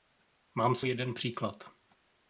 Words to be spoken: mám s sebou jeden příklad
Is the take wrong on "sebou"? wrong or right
wrong